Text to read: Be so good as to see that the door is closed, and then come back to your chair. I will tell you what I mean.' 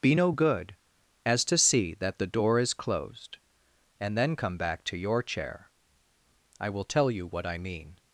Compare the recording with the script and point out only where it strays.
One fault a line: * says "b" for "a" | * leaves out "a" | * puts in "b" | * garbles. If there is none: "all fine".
* says "no" for "so"